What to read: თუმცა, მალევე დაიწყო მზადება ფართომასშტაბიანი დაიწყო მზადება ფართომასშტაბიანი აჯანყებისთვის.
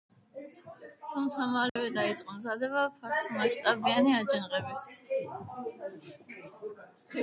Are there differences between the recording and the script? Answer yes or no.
yes